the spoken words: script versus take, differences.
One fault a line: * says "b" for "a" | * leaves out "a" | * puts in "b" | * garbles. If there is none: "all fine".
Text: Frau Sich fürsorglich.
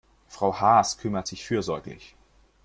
* puts in "Haas kümmert"